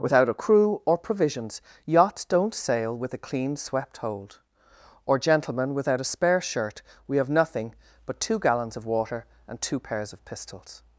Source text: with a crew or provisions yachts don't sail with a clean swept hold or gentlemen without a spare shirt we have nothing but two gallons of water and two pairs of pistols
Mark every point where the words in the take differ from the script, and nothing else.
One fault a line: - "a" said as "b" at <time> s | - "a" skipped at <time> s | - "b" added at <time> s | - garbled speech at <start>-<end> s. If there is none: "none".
- "with" said as "without" at 0.0 s